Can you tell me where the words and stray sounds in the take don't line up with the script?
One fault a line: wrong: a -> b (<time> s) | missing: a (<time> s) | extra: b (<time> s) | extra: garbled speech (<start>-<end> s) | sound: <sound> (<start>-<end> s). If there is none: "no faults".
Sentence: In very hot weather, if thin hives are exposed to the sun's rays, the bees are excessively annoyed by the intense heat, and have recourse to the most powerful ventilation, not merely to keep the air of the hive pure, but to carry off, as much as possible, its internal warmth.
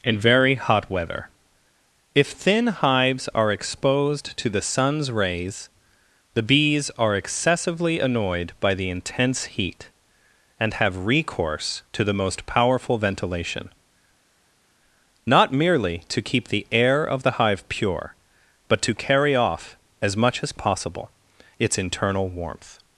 no faults